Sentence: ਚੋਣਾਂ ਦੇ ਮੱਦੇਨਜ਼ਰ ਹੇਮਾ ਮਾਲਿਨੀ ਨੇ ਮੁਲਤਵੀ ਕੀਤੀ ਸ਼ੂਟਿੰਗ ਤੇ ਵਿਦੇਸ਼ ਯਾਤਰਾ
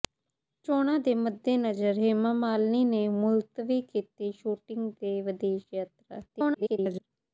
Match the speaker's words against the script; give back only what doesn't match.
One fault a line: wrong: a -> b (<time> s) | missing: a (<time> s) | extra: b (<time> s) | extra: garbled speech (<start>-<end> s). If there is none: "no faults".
extra: garbled speech (6.3-7.1 s)